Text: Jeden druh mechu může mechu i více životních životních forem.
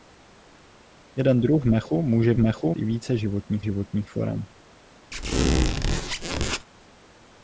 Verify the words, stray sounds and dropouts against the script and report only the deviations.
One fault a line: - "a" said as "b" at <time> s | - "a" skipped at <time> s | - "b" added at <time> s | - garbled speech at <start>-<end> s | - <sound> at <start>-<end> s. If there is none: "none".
- squeak at 5.1-6.7 s